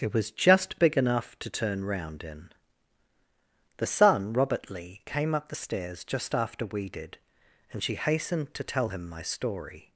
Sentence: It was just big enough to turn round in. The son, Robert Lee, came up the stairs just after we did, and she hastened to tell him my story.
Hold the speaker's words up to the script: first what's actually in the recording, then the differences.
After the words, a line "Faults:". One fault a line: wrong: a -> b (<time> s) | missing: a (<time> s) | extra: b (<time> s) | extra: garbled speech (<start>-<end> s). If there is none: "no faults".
It was just big enough to turn round in. The son, Robert Lee, came up the stairs just after we did, and she hastened to tell him my story.
Faults:
no faults